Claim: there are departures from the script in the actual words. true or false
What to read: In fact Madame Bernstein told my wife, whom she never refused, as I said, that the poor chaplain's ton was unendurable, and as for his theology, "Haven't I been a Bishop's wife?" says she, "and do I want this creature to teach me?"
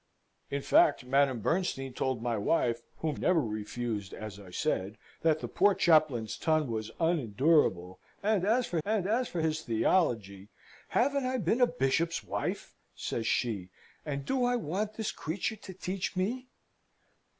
true